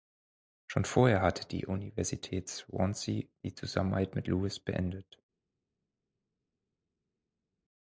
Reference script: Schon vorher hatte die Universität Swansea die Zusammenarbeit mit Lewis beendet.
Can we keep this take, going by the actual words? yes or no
yes